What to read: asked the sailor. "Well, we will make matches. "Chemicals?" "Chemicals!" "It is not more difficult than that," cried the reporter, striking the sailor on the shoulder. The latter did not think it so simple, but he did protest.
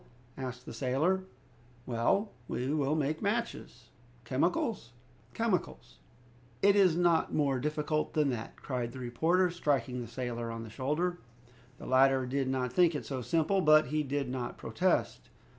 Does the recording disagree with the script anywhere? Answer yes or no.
yes